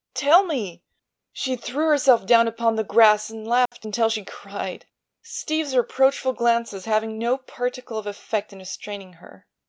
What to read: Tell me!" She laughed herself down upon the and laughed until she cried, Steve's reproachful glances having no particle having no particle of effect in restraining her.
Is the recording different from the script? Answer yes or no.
yes